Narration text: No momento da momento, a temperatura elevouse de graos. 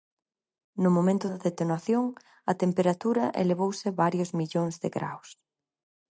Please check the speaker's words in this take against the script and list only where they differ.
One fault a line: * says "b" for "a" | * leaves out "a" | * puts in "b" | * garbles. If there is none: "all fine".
* says "detonación" for "momento"
* puts in "varios millóns"